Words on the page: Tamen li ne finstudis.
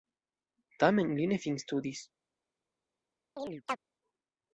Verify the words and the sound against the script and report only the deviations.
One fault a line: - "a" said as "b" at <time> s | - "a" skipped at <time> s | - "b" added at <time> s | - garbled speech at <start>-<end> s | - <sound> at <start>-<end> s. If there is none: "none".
- chirp at 3.4-3.8 s